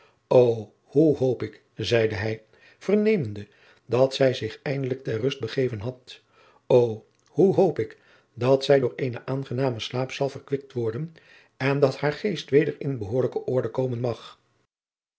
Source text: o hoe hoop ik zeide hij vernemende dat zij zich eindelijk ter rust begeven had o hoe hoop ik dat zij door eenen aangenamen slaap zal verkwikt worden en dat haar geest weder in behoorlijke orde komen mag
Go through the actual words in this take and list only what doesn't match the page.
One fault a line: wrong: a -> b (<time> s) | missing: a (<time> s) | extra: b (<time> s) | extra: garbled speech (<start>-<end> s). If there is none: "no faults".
no faults